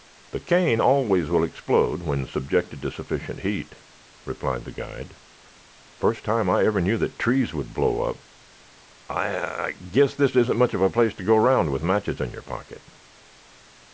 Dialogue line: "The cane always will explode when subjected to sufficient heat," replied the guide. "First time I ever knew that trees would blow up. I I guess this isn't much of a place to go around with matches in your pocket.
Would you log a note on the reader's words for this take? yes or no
no